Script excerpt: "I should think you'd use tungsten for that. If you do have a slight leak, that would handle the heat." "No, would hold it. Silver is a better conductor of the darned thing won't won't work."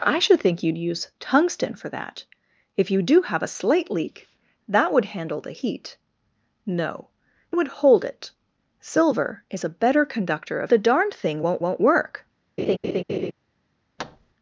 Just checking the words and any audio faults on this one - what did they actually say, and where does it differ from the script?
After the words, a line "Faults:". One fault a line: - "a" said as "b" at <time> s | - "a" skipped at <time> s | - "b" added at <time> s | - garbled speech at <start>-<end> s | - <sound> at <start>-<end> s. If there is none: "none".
"I should think you'd use tungsten for that. If you do have a slight leak, that would handle the heat." "No, would hold it. Silver is a better conductor of the darned thing won't won't work."
Faults:
- laugh at 12.6-13.3 s
- thud at 14.0-14.3 s